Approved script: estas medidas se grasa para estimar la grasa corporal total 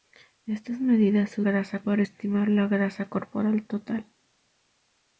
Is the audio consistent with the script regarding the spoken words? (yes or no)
yes